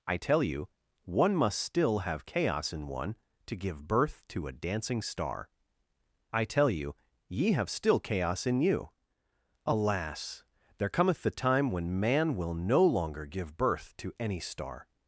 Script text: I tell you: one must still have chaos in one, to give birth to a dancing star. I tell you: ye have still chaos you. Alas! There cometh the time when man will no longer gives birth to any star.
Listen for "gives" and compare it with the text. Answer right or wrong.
wrong